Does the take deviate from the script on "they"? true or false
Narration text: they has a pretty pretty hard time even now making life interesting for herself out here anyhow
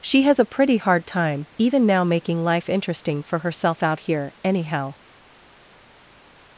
true